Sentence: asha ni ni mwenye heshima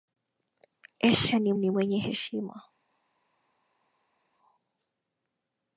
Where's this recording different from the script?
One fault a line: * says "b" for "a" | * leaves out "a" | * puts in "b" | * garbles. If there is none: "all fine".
all fine